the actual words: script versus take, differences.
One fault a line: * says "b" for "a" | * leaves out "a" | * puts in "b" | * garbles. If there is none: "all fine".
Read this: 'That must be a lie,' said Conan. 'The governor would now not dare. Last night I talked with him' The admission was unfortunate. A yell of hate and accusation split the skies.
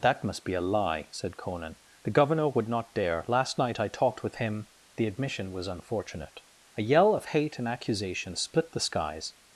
* leaves out "now"